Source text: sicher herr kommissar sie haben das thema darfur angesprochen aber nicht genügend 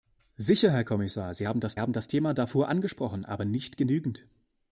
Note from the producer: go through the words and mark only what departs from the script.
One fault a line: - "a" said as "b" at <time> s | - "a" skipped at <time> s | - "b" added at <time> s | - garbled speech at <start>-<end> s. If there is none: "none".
- "haben das" added at 1.8 s